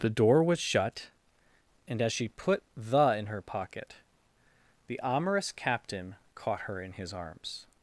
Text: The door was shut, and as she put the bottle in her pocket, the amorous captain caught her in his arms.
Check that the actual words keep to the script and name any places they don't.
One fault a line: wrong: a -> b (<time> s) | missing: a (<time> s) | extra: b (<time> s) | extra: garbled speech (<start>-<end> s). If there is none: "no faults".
missing: bottle (3.2 s)